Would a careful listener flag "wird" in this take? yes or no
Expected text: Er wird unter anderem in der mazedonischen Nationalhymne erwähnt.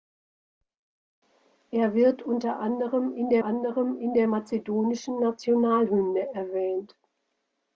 no